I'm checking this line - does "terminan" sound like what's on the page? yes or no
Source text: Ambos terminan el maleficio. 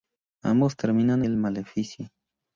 yes